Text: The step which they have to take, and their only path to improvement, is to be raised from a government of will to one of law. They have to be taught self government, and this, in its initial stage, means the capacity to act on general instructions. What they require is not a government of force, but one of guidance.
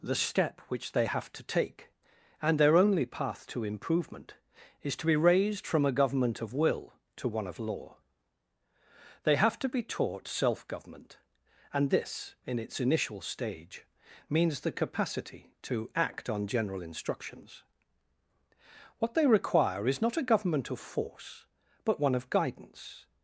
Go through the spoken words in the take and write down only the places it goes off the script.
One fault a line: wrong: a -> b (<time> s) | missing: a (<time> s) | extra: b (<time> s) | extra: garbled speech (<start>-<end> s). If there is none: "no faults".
no faults